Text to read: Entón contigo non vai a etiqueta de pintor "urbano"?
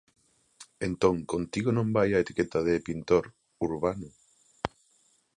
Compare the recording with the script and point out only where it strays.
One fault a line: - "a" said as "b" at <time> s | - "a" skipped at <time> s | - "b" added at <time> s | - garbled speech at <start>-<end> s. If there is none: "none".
none